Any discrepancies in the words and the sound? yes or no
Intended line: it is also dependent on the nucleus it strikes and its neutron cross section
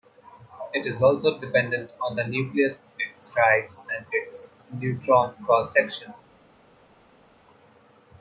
no